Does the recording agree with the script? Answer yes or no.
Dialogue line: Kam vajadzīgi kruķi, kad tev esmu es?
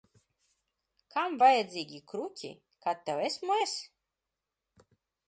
yes